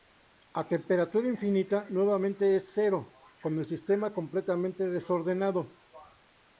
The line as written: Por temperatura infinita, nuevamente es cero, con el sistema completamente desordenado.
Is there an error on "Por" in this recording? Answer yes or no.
yes